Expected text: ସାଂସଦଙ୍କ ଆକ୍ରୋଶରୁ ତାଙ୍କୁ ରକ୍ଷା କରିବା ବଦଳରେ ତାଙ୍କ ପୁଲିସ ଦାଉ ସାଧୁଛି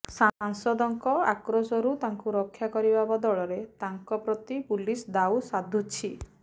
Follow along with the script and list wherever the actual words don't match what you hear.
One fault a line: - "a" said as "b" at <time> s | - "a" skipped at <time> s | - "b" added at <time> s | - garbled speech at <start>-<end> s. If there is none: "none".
- "ପ୍ରତି" added at 4.2 s